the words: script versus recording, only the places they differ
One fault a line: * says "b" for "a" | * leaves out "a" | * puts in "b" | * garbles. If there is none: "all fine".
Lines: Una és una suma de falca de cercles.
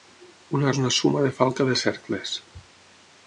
all fine